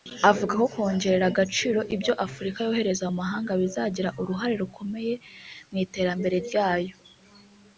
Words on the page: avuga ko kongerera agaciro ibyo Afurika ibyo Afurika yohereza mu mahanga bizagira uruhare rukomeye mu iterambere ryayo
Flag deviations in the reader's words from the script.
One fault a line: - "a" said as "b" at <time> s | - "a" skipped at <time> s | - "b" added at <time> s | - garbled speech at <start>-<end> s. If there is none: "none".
- "ibyo Afurika" skipped at 2.6 s